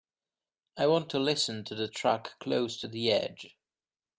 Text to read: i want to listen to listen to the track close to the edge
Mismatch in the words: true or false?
true